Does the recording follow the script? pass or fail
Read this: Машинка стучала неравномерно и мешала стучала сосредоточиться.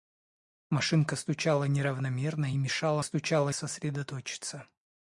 pass